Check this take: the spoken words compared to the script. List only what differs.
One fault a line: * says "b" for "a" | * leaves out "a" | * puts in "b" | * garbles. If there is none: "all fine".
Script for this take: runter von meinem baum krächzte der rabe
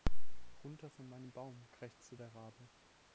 all fine